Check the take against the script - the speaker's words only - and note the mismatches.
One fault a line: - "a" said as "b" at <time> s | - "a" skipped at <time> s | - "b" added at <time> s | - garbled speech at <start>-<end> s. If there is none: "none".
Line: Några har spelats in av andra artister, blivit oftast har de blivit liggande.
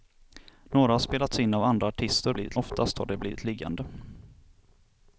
none